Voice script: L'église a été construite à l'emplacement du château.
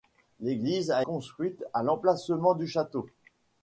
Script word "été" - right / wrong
wrong